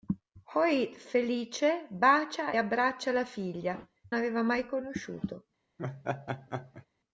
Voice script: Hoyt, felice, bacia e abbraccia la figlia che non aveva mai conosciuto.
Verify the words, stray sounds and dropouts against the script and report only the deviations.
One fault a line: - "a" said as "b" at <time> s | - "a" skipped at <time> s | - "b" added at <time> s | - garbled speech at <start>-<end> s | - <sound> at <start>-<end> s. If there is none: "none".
- "e" skipped at 2.5 s
- "che non" skipped at 3.8 s
- laugh at 5.8-6.9 s